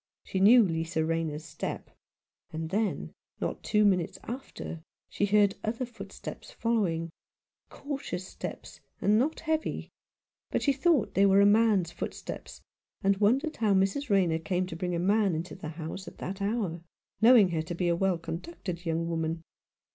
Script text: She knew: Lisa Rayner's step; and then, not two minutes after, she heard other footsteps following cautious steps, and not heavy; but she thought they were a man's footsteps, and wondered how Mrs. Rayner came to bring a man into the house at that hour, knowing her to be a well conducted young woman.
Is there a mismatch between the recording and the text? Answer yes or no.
no